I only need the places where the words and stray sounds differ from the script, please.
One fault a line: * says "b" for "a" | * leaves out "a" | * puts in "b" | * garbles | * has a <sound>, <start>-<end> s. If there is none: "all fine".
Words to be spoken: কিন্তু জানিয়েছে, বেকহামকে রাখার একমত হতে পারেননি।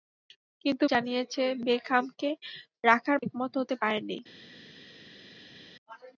all fine